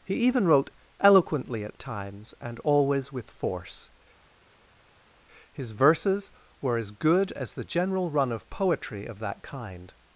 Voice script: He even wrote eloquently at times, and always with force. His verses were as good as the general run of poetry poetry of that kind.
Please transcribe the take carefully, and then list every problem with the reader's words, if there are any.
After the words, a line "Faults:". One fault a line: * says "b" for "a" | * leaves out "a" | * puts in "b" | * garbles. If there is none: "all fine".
He even wrote eloquently at times, and always with force. His verses were as good as the general run of poetry of that kind.
Faults:
* leaves out "poetry"